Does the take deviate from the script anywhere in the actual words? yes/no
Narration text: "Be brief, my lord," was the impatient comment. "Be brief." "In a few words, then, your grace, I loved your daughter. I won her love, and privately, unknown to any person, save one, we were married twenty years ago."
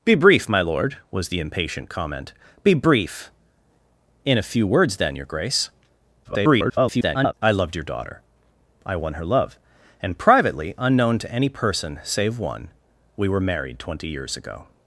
yes